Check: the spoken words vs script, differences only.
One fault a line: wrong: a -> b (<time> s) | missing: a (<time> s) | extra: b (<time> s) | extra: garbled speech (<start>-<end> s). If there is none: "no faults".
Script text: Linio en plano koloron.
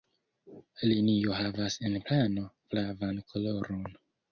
extra: havas (1.4 s)
extra: flavan (2.7 s)